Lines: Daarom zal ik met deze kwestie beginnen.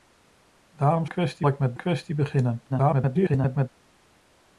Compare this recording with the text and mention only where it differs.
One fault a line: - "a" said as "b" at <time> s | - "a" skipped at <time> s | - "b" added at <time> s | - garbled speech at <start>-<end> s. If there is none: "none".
- "zal" said as "kwestie" at 1.0 s
- "deze" skipped at 1.8 s
- garbled speech at 2.7-3.7 s